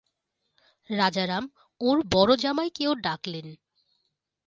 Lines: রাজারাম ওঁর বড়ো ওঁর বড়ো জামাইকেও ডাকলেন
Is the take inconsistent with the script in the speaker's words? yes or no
yes